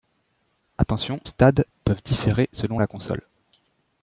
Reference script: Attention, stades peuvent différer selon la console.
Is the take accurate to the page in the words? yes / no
yes